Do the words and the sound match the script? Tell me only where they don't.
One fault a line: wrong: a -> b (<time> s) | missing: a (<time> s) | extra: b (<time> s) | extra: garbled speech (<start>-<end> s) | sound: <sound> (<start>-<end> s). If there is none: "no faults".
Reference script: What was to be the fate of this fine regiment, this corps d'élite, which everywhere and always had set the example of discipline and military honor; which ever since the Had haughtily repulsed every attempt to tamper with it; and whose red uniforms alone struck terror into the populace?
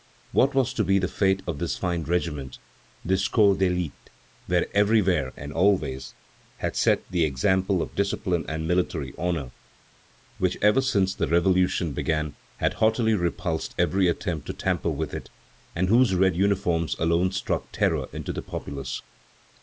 extra: Revolution began (11.3 s)